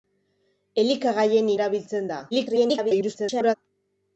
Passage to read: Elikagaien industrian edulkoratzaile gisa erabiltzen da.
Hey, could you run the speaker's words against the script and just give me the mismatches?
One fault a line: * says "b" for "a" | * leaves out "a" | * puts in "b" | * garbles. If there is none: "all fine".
* leaves out "industrian edulkoratzaile gisa"
* garbles